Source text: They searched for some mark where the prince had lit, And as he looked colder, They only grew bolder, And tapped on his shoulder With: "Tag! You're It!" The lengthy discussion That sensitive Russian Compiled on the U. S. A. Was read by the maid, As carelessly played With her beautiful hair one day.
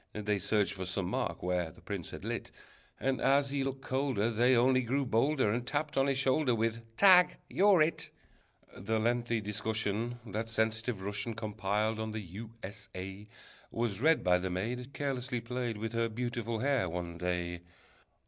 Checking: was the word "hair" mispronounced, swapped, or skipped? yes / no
no